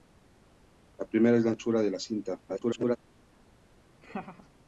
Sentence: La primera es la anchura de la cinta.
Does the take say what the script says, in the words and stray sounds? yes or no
no